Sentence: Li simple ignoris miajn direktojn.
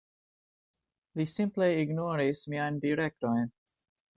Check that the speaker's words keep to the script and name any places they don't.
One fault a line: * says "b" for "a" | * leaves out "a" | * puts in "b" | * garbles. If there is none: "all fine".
all fine